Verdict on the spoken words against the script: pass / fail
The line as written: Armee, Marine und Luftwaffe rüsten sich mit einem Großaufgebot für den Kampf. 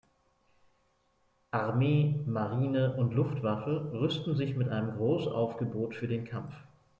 pass